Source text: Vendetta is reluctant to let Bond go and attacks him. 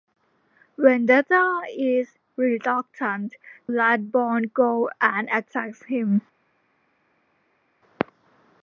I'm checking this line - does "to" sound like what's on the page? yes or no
no